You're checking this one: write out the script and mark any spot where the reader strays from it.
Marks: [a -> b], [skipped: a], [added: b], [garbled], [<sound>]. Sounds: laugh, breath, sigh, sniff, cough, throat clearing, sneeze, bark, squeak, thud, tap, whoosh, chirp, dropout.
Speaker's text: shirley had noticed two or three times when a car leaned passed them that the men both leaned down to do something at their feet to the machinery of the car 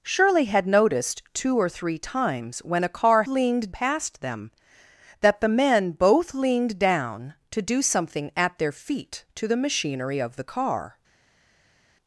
shirley had noticed two or three times when a car leaned passed them that the men both leaned down to do something at their feet to the machinery of the car